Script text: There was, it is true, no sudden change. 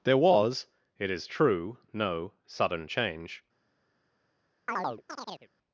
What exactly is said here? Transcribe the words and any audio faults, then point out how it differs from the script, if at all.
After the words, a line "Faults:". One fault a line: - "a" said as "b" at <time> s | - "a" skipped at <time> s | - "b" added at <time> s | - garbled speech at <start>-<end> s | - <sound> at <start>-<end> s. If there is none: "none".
There was, it is true, no sudden change.
Faults:
- chirp at 4.7-5.5 s